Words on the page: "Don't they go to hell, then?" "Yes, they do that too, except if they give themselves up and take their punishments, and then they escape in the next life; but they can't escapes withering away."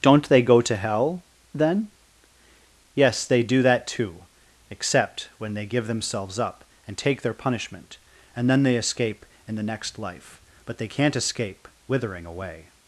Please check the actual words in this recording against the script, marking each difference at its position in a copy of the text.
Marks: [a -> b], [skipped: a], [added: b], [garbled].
"Don't they go to hell, then?" "Yes, they do that too, except [if -> when] they give themselves up and take their [punishments, -> punishment] and then they escape in the next life; but they can't [escapes -> escape] withering away."